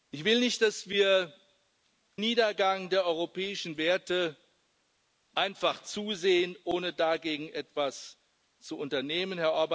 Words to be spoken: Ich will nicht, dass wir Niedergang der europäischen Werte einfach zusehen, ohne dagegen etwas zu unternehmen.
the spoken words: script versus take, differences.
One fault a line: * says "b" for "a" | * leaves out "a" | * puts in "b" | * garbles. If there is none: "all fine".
all fine